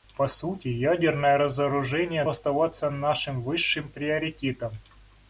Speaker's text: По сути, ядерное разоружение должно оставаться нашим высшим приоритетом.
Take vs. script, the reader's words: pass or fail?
fail